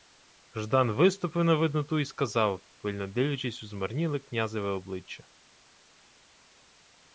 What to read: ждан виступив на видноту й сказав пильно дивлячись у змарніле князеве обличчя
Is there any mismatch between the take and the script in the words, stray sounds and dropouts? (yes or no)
no